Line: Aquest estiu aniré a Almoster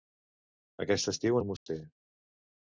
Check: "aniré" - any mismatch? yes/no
yes